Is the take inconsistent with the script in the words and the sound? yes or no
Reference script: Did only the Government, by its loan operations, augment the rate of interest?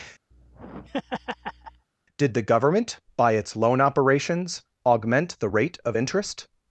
yes